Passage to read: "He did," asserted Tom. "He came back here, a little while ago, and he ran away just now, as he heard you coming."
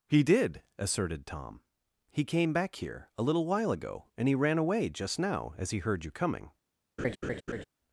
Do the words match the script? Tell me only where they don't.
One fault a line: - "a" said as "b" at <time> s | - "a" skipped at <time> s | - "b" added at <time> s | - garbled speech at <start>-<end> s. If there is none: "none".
none